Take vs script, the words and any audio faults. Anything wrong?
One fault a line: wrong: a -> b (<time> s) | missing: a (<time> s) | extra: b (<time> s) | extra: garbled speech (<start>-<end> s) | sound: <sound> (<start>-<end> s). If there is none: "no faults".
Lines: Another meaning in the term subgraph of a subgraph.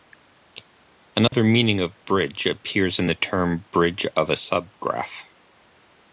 sound: dropout (1.3-1.3 s)
extra: of bridge appears (1.8 s)
wrong: subgraph -> bridge (3.7 s)